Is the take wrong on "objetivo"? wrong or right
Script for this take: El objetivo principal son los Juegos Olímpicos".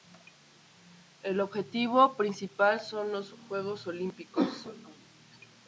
right